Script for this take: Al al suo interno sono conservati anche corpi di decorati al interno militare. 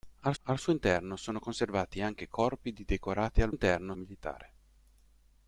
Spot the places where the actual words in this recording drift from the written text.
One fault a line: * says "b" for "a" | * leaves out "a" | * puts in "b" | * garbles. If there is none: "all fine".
all fine